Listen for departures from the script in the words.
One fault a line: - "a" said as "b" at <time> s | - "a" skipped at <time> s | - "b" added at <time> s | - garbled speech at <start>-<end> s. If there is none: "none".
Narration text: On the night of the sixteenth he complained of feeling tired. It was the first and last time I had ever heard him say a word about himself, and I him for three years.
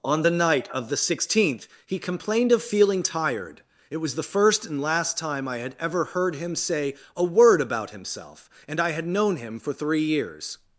- "had known" added at 8.9 s